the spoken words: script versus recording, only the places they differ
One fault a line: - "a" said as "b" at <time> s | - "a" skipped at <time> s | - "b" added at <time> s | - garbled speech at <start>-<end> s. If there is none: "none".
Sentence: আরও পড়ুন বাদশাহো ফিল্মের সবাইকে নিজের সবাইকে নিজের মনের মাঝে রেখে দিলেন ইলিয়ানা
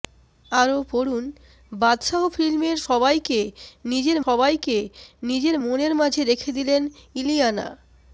none